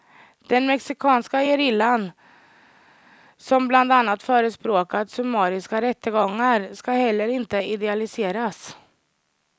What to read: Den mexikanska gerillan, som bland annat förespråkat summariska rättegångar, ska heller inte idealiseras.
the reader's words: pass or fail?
pass